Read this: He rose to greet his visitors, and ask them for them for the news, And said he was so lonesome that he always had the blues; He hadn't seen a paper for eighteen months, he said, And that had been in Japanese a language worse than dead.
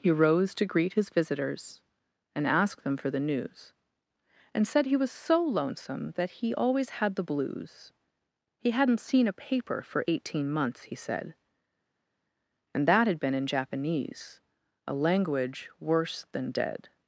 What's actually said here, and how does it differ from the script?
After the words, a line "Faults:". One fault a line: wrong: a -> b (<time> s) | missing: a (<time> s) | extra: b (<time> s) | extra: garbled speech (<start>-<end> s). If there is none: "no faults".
He rose to greet his visitors, and ask them for the news, And said he was so lonesome that he always had the blues; He hadn't seen a paper for eighteen months, he said, And that had been in Japanese a language worse than dead.
Faults:
missing: them for (3.1 s)